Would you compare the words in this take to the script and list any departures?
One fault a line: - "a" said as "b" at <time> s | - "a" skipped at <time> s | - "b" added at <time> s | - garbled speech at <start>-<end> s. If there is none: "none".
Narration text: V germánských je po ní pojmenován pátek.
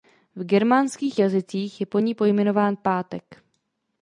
- "jazycích" added at 1.2 s